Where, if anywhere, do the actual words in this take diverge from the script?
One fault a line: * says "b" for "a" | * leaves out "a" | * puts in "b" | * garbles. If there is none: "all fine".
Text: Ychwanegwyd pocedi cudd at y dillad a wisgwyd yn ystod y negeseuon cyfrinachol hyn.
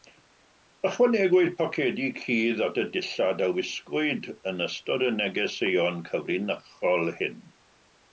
all fine